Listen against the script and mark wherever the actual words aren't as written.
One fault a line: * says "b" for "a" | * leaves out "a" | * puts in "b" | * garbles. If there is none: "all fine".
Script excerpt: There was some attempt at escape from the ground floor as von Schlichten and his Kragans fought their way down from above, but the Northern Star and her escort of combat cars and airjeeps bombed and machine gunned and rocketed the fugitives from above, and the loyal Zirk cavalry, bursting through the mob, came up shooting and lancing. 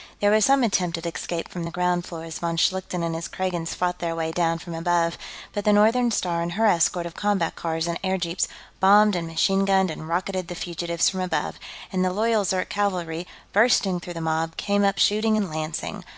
all fine